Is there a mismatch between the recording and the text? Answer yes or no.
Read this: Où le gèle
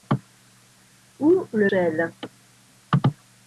no